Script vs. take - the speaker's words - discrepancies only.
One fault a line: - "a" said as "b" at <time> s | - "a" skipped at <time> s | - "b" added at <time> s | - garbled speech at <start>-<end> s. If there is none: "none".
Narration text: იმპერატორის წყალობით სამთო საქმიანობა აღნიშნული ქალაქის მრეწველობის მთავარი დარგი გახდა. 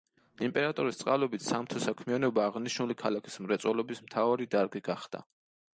none